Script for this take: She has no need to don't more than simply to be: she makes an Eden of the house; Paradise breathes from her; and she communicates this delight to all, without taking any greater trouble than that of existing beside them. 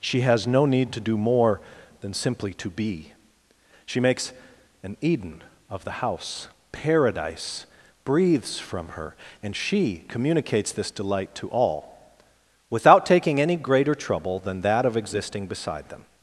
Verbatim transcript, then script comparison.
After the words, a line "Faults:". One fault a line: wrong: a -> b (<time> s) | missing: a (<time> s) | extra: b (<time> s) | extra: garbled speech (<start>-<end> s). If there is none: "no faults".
She has no need to do more than simply to be: she makes an Eden of the house; Paradise breathes from her; and she communicates this delight to all, without taking any greater trouble than that of existing beside them.
Faults:
wrong: don't -> do (1.0 s)